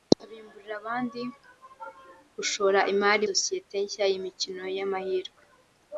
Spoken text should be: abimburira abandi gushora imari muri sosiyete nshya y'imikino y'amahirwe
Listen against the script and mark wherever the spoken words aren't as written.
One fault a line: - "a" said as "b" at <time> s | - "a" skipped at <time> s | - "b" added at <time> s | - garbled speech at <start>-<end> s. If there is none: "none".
- "muri" skipped at 3.2 s